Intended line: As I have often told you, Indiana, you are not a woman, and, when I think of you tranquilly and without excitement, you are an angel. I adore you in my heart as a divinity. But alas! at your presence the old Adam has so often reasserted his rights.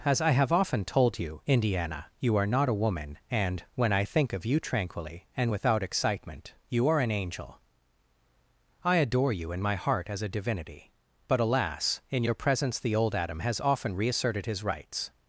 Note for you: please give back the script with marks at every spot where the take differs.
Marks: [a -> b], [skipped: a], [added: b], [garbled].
As I have often told you, Indiana, you are not a woman, and, when I think of you tranquilly and without excitement, you are an angel. I adore you in my heart as a divinity. But alas! [at -> in] your presence the old Adam has [skipped: so] often reasserted his rights.